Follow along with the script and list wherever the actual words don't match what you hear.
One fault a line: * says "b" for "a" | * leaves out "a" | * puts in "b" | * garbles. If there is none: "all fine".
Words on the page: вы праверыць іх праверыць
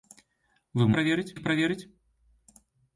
all fine